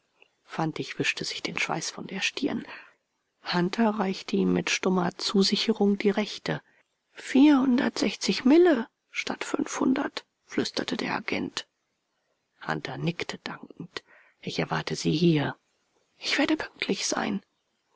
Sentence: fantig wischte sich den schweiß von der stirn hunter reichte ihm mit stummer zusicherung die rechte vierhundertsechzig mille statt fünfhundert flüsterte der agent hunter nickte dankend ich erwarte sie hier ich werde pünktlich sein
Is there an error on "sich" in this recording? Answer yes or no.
no